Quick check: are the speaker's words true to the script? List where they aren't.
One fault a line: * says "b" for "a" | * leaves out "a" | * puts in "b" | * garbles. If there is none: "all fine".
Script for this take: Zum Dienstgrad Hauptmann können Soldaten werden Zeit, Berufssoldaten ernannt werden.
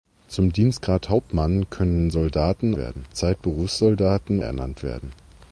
all fine